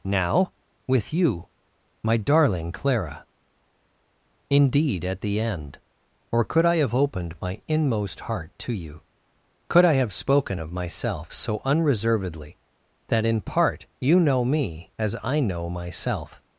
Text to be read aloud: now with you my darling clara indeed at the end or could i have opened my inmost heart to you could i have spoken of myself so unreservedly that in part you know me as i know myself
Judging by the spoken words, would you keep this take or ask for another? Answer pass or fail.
pass